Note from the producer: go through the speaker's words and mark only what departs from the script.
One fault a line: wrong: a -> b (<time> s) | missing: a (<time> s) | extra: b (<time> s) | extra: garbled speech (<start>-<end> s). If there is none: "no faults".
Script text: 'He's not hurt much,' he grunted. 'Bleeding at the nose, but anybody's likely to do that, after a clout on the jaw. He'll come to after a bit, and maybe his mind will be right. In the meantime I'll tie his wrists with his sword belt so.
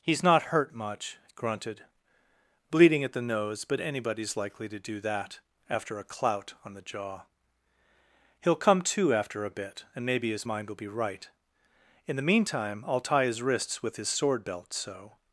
missing: he (1.2 s)